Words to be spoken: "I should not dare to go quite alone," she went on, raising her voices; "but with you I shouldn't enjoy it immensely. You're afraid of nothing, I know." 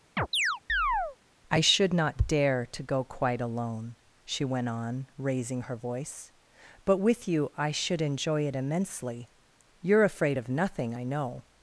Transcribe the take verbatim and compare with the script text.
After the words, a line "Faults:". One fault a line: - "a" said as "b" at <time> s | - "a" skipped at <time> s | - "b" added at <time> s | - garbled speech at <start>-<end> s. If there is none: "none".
"I should not dare to go quite alone," she went on, raising her voice; "but with you I should enjoy it immensely. You're afraid of nothing, I know."
Faults:
- "voices" said as "voice" at 5.8 s
- "shouldn't" said as "should" at 7.7 s